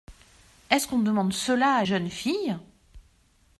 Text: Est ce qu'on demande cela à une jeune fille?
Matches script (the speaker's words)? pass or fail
fail